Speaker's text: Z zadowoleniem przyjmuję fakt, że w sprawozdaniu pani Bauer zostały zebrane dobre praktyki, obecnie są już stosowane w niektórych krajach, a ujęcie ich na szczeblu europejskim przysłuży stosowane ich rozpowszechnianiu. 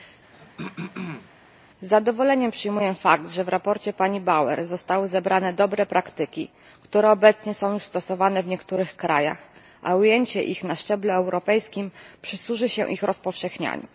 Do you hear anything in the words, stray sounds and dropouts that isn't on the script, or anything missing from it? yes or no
yes